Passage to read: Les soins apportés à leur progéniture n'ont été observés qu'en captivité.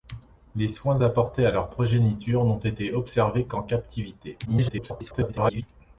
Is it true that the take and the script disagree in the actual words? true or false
true